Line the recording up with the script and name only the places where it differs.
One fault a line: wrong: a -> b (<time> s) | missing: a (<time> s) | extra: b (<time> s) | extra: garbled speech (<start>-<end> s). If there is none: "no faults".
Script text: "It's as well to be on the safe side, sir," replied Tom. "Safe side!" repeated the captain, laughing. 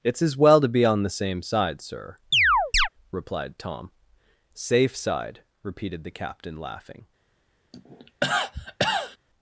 wrong: safe -> same (1.1 s)